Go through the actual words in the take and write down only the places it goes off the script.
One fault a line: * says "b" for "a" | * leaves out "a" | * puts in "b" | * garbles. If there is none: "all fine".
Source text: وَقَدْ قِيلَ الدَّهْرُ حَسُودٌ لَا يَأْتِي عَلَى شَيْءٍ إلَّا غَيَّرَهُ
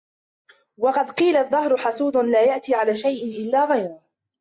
all fine